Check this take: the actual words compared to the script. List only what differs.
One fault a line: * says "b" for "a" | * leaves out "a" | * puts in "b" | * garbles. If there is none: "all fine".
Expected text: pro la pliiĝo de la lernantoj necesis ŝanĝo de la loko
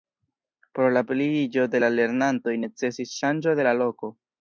all fine